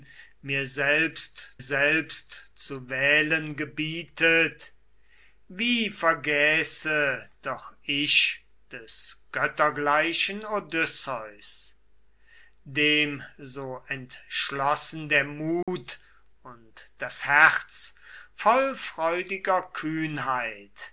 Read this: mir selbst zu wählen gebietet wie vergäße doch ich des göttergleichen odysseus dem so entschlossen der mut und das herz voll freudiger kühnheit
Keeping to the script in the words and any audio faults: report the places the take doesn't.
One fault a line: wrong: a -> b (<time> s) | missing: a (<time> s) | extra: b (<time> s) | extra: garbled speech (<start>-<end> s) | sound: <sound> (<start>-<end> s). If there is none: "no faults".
extra: selbst (1.6 s)
sound: dropout (15.6-15.7 s)